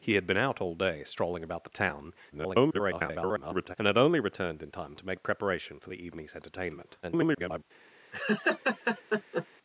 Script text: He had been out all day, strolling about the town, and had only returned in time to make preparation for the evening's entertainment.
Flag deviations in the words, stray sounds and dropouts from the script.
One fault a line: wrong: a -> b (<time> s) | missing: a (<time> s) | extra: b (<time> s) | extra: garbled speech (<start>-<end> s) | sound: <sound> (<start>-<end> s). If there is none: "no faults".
extra: garbled speech (2.3-3.8 s)
extra: garbled speech (7.0-7.6 s)
sound: laugh (8.1-9.5 s)